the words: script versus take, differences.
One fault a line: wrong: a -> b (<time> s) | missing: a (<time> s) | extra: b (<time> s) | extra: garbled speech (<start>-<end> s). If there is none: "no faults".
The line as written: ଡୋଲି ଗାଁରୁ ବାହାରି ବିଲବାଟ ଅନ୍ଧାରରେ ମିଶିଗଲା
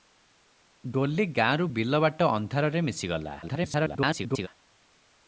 missing: ବାହାରି (1.7 s)
extra: garbled speech (3.4-4.5 s)